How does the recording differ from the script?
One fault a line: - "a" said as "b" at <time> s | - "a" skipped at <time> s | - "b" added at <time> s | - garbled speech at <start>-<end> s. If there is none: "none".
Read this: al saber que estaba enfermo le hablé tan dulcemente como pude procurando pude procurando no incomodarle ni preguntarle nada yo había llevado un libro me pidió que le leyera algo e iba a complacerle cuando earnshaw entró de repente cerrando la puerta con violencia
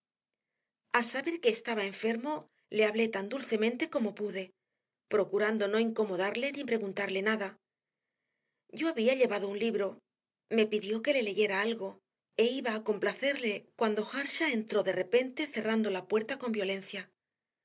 - "pude procurando" skipped at 5.6 s